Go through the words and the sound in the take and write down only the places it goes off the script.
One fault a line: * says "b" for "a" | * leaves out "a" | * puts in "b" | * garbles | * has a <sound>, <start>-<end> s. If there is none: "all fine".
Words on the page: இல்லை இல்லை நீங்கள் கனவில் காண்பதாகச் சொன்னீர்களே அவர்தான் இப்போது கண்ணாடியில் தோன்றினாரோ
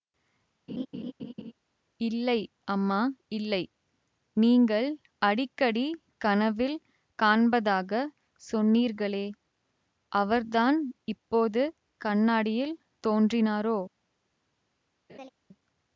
* has a laugh, 0.7-1.5 s
* puts in "அம்மா"
* puts in "அடிக்கடி"
* has a laugh, 15.1-15.3 s